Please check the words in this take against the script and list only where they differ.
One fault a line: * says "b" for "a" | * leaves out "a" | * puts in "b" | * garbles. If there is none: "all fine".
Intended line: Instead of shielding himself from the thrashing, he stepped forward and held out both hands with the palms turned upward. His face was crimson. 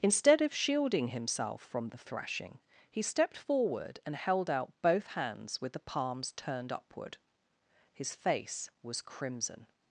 all fine